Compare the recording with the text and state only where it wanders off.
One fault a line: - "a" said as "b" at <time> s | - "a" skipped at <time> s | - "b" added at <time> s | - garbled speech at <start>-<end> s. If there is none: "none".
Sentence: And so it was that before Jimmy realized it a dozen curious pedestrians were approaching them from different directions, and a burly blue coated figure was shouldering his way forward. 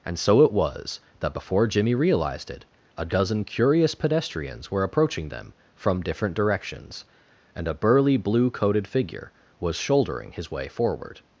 none